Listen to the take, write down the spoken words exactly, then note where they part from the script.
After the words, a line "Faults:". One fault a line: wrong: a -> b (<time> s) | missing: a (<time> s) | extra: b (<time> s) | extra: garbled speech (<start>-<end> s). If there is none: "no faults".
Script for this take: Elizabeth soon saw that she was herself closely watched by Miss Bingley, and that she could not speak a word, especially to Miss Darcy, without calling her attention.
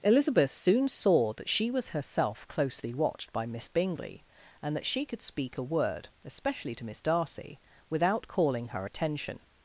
Elizabeth soon saw that she was herself closely watched by Miss Bingley, and that she could speak a word, especially to Miss Darcy, without calling her attention.
Faults:
missing: not (5.2 s)